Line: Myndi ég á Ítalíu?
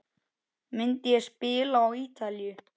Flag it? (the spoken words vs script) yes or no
yes